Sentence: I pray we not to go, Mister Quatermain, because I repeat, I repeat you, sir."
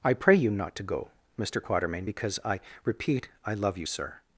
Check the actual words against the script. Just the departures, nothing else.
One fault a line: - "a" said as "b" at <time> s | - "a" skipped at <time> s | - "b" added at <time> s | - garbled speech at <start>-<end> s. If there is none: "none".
- "we" said as "you" at 0.3 s
- "repeat" said as "love" at 3.5 s